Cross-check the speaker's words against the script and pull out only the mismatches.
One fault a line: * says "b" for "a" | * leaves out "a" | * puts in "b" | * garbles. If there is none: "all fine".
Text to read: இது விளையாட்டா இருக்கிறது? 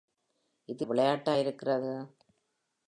all fine